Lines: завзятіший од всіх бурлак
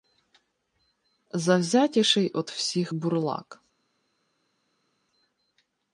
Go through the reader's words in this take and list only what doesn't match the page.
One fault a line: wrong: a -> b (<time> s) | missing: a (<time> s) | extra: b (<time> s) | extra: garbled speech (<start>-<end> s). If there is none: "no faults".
no faults